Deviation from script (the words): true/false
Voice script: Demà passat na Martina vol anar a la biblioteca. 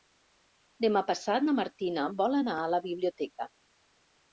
false